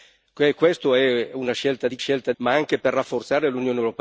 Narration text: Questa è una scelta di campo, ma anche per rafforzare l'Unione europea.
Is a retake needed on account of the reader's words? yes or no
yes